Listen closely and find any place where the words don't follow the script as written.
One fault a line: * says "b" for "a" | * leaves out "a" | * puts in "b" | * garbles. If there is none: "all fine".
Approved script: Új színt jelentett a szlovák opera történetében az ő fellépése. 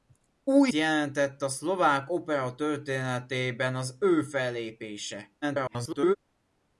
* leaves out "színt"
* garbles